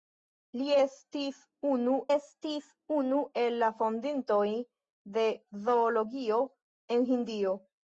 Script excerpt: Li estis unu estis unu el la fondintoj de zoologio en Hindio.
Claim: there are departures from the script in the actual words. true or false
false